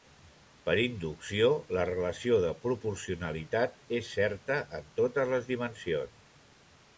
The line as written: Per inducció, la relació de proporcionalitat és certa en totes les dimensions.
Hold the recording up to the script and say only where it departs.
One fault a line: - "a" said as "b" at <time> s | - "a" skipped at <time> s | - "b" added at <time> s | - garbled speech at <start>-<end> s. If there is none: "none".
none